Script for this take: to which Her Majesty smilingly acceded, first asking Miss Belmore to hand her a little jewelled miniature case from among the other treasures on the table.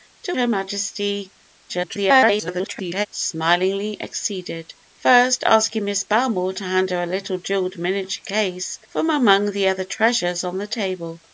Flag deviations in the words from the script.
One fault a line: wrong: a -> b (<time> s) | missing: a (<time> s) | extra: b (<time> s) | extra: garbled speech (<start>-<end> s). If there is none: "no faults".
missing: which (0.3 s)
extra: garbled speech (1.7-3.1 s)